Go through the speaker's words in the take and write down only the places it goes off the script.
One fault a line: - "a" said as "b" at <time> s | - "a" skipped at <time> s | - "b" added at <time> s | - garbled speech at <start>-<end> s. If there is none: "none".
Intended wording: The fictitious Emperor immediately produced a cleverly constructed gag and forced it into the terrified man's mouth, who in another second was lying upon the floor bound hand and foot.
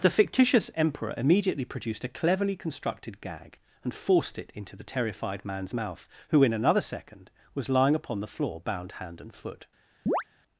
none